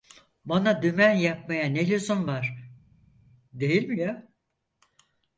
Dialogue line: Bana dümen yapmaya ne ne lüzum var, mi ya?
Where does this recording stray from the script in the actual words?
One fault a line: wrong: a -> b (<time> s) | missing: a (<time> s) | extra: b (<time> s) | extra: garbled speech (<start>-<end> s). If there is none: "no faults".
missing: ne (1.9 s)
extra: değil (3.5 s)